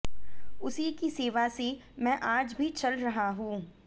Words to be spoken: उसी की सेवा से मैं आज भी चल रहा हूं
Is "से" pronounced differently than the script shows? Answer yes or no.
no